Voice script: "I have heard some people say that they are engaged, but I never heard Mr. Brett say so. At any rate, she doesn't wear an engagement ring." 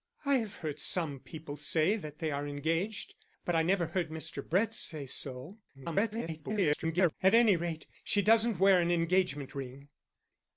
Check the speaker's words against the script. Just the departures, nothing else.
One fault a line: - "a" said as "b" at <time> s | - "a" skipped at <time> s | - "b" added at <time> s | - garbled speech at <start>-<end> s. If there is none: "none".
- garbled speech at 5.7-7.1 s